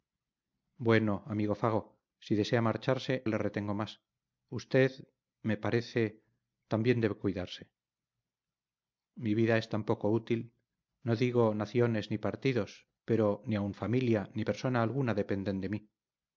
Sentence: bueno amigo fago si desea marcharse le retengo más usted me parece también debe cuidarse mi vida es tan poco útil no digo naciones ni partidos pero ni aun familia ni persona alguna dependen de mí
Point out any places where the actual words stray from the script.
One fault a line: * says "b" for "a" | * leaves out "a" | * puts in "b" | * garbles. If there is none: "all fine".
all fine